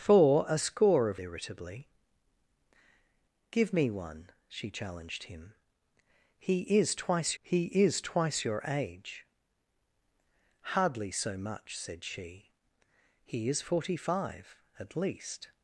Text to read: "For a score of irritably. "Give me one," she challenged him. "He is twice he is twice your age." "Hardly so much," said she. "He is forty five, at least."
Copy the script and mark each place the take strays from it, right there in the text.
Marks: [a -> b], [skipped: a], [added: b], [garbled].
"For a score of irritably. "Give me one," she challenged him. "He is twice he is twice your age." "Hardly so much," said she. "He is forty five, at least."